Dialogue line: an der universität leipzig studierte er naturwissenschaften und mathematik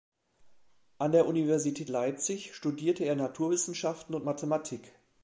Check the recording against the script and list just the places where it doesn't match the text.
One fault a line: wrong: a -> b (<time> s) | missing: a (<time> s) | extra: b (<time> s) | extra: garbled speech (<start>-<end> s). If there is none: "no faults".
no faults